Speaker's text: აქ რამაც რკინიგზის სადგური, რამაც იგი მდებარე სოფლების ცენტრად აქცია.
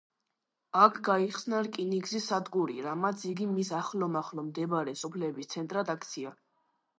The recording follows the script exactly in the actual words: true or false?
false